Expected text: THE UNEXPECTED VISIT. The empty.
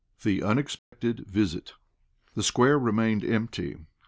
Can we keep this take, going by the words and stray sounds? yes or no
no